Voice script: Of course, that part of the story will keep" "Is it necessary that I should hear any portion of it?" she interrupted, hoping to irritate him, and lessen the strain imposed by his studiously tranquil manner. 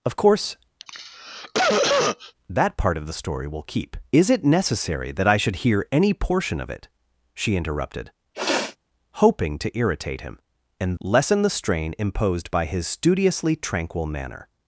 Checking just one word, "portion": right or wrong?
right